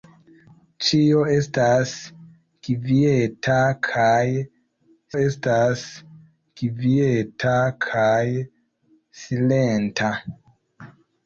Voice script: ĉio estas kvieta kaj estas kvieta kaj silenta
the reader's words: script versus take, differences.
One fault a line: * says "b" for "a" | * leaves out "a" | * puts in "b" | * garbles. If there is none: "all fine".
all fine